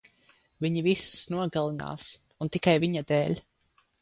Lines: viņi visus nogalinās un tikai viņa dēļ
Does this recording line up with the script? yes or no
yes